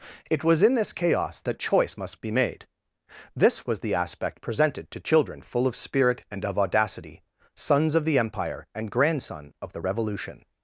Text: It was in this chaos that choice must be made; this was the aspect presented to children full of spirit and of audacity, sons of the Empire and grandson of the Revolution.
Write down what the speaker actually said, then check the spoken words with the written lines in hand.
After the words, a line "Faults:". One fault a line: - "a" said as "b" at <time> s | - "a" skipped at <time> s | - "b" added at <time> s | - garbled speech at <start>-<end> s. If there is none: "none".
It was in this chaos that choice must be made; this was the aspect presented to children full of spirit and of audacity, sons of the Empire and grandson of the Revolution.
Faults:
none